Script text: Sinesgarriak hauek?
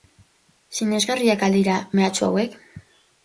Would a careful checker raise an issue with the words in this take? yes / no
yes